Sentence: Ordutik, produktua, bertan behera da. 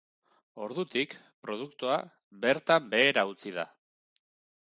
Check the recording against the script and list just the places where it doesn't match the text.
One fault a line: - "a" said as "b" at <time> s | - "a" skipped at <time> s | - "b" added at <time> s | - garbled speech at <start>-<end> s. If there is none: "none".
- "utzi" added at 3.3 s